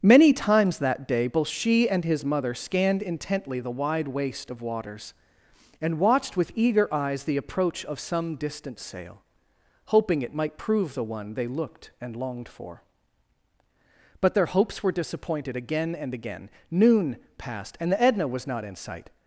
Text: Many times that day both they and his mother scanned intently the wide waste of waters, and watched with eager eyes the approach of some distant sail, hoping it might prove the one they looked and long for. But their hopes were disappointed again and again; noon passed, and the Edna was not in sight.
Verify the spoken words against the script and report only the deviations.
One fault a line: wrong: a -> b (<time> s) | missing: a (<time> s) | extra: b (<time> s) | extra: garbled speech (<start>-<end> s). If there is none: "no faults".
wrong: they -> she (1.5 s)
wrong: long -> longed (12.2 s)